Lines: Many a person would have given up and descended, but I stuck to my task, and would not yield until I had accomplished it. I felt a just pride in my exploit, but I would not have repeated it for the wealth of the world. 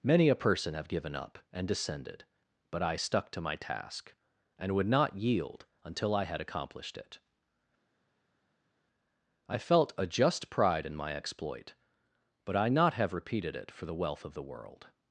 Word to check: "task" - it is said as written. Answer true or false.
true